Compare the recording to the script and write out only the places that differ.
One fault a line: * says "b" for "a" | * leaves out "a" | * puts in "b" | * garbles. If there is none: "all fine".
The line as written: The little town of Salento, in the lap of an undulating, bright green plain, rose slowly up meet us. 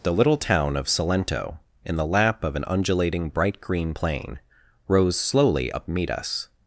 all fine